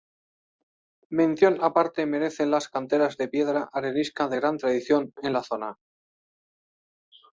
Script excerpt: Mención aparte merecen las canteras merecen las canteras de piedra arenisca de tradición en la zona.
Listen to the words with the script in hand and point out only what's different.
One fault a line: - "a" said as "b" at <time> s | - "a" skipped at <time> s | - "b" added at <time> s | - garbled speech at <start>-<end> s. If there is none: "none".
- "merecen las canteras" skipped at 3.2 s
- "gran" added at 4.3 s